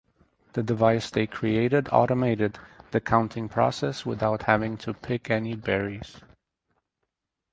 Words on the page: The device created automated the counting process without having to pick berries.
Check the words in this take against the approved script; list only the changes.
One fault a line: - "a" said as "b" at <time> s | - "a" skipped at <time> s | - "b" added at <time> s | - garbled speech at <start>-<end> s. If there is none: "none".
- "they" added at 1.1 s
- "any" added at 5.3 s